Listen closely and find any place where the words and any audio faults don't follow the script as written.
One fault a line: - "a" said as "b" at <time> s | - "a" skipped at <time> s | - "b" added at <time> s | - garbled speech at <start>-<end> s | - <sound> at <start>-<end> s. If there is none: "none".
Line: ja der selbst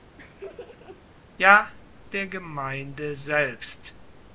- laugh at 0.2-1.0 s
- "gemeinde" added at 2.3 s